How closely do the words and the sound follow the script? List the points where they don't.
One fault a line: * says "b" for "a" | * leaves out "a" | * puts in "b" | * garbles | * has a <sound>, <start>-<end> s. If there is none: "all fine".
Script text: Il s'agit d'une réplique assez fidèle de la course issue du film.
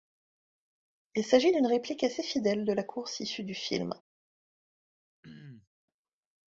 * has a throat clearing, 5.2-5.7 s